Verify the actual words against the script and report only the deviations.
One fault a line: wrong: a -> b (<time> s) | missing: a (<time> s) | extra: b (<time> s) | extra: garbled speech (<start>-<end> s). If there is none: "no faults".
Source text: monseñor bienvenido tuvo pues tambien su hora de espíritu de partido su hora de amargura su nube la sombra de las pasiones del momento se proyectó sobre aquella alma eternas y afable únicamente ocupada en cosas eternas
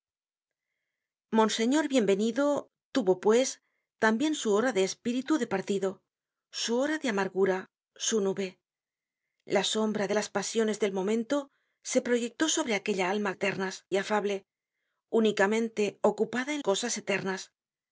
no faults